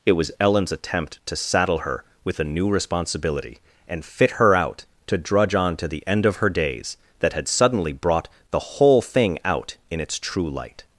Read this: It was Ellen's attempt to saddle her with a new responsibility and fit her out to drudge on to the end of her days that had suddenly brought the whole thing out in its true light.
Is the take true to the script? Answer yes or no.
yes